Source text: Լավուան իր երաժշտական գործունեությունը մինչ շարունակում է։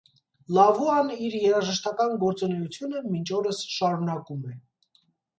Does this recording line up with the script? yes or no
no